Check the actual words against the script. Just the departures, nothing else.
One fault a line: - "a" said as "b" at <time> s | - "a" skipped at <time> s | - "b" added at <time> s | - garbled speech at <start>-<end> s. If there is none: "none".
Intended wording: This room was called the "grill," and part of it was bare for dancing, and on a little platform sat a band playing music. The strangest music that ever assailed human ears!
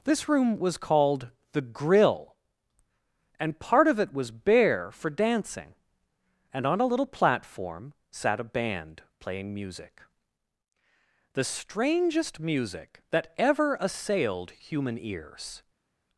none